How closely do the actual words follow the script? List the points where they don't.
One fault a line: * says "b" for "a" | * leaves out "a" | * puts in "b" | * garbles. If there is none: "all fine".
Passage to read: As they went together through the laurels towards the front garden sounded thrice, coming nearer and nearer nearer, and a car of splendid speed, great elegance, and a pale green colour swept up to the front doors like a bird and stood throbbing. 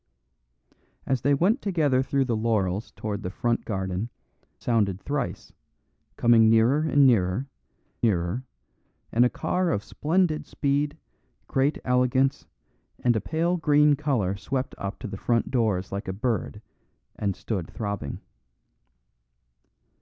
all fine